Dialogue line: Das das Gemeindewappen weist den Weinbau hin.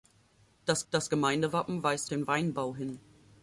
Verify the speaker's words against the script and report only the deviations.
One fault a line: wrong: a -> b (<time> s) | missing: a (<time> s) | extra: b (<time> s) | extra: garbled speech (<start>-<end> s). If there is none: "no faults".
no faults